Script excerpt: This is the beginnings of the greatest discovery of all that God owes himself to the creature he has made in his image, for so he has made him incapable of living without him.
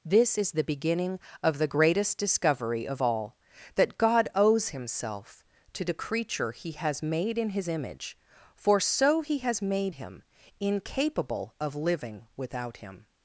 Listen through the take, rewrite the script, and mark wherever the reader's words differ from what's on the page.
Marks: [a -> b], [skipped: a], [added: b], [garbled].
This is the [beginnings -> beginning] of the greatest discovery of all that God owes himself to the creature he has made in his image, for so he has made him incapable of living without him.